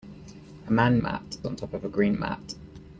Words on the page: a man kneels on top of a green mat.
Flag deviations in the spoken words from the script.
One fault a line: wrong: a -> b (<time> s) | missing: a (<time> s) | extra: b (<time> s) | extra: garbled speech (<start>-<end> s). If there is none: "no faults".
wrong: kneels -> mat (1.0 s)